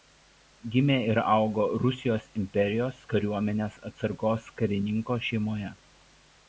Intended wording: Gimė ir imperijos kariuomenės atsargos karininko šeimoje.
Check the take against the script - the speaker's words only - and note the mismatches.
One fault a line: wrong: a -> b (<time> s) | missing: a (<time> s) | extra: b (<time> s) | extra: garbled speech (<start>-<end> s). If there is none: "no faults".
extra: augo Rusijos (1.3 s)